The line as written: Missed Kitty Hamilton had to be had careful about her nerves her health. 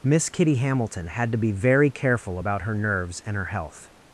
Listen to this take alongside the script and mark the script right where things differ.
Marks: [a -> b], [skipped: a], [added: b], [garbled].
[Missed -> Miss] Kitty Hamilton had to be [had -> very] careful about her nerves [added: and] her health.